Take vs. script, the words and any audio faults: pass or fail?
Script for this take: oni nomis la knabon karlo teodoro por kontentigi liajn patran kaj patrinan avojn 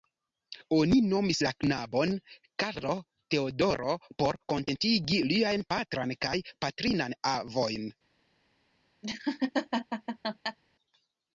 fail